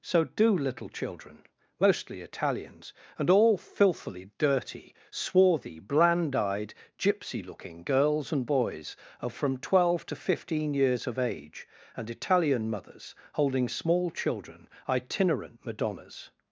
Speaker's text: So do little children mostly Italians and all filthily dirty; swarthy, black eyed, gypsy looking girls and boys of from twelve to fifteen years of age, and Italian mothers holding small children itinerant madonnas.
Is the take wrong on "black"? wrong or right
wrong